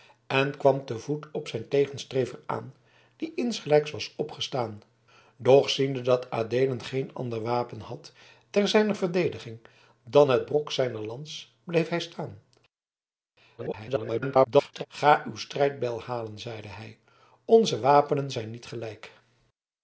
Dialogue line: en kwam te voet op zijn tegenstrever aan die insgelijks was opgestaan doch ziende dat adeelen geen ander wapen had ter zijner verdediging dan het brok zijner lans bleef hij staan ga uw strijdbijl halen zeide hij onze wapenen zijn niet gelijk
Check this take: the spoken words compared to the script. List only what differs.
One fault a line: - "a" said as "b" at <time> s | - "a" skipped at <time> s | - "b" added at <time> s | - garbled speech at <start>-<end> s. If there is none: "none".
- garbled speech at 13.6-14.9 s